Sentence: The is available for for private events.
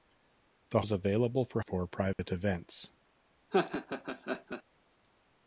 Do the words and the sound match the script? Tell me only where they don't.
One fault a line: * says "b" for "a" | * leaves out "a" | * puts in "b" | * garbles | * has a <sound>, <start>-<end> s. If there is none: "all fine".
* has a dropout, 2.1-2.2 s
* has a laugh, 3.5-4.6 s